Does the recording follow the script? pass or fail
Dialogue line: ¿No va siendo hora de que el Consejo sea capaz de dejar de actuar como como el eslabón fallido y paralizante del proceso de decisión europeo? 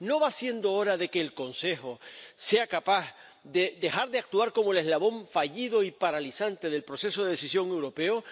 fail